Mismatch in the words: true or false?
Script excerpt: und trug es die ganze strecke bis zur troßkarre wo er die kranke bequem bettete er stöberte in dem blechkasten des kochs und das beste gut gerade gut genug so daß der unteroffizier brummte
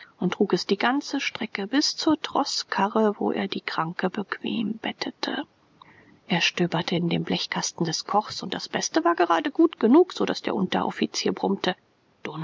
true